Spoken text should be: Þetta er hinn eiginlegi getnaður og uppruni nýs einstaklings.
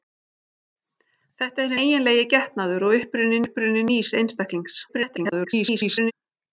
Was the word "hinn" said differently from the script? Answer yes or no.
yes